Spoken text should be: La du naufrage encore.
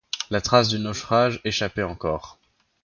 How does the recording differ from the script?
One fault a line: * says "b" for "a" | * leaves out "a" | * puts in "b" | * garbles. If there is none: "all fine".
* puts in "trace"
* puts in "échappait"